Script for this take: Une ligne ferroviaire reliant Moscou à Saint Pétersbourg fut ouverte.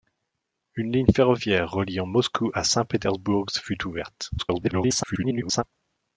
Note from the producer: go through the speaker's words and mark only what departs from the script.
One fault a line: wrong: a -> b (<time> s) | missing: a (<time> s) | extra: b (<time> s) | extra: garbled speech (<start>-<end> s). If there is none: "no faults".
extra: garbled speech (4.4-5.6 s)